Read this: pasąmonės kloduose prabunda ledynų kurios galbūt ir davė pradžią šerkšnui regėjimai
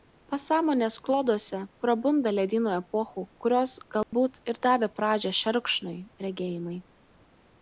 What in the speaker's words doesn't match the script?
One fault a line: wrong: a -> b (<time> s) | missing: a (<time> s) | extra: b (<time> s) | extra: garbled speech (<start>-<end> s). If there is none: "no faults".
extra: epochų (2.8 s)